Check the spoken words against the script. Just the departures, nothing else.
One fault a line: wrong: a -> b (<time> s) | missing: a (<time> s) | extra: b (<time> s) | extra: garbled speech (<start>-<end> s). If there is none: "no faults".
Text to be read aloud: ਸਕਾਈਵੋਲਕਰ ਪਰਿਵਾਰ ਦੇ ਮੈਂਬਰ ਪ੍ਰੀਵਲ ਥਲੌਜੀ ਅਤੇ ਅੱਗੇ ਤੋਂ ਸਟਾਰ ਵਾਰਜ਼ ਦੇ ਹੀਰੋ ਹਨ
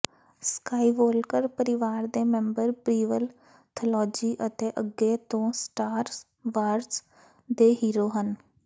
no faults